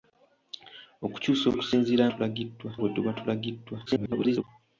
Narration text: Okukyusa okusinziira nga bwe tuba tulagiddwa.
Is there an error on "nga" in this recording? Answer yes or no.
yes